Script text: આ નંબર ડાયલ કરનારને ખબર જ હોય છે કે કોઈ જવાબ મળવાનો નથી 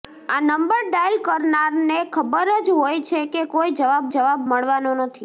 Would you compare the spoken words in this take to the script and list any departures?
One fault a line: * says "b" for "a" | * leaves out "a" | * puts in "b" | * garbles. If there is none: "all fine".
* puts in "જવાબ"